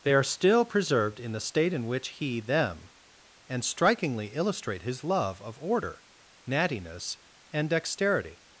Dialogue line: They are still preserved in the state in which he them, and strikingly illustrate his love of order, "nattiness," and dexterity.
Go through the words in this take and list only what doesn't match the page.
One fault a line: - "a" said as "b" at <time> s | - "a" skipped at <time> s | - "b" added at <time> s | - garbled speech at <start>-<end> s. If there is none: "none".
none